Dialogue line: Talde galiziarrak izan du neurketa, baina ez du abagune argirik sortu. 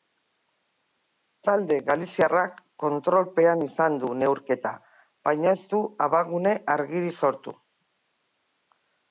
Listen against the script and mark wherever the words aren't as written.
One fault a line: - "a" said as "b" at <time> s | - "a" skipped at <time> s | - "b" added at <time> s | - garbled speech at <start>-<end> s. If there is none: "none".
- "kontrolpean" added at 2.8 s